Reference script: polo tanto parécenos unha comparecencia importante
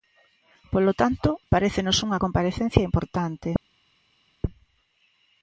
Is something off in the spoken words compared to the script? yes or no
no